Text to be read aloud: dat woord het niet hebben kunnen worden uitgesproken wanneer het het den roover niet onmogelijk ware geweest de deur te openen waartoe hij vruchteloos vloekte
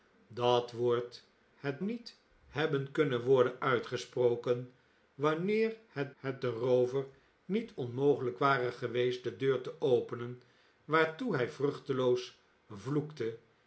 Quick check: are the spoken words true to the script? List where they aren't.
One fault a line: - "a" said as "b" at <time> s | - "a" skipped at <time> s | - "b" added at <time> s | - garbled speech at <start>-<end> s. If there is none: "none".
none